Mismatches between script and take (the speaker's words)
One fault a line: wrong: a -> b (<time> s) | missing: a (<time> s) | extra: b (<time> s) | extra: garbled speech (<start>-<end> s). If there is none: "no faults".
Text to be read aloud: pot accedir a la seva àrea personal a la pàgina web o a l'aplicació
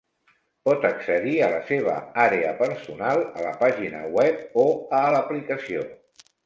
no faults